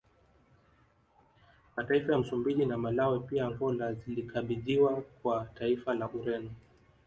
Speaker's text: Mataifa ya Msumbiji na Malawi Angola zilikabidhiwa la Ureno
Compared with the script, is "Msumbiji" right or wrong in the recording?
right